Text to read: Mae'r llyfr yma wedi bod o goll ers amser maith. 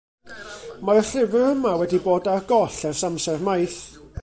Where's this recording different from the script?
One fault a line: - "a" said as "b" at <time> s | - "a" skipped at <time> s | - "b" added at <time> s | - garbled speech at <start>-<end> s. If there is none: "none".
- "o" said as "ar" at 2.3 s